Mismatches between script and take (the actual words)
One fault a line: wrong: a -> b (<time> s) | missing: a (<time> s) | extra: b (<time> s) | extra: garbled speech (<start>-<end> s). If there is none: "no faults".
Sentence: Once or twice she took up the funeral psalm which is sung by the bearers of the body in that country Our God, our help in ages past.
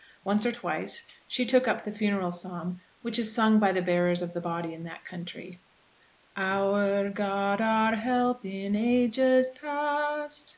no faults